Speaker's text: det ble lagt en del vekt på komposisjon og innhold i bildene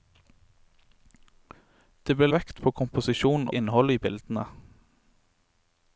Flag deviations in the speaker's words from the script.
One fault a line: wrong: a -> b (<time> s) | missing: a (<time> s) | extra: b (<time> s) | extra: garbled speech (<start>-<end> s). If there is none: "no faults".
missing: lagt en del (2.3 s)
missing: og (3.5 s)